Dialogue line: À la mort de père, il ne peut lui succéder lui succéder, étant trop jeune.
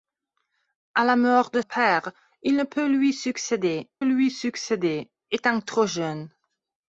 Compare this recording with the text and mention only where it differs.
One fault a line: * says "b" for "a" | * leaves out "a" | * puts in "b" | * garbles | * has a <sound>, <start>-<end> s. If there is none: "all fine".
all fine